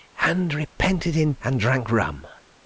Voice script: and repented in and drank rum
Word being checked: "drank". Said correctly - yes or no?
yes